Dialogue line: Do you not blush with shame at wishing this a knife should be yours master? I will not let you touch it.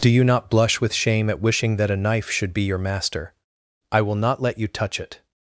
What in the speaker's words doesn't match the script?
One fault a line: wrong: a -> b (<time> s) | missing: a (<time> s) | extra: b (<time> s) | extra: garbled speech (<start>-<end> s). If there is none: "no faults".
wrong: this -> that (1.8 s)
wrong: yours -> your (2.6 s)